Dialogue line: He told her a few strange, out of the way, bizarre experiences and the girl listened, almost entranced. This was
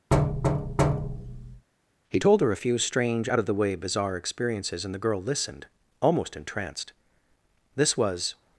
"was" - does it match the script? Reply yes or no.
yes